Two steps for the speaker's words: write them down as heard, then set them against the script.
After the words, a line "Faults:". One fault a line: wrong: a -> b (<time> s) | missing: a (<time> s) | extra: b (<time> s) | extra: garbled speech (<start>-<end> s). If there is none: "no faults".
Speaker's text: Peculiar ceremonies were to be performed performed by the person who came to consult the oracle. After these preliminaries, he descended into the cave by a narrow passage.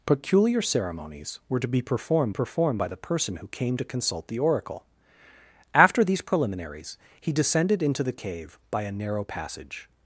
Peculiar ceremonies were to be performed performed by the person who came to consult the oracle. After these preliminaries, he descended into the cave by a narrow passage.
Faults:
no faults